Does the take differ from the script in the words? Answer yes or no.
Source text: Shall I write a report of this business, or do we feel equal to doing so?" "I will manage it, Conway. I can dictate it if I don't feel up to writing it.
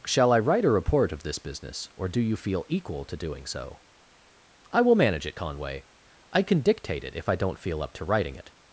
yes